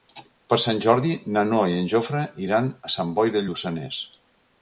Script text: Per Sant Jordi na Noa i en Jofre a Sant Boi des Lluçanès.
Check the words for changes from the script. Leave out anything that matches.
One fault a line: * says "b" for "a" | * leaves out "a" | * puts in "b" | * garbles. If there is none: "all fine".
* puts in "iran"
* says "de" for "des"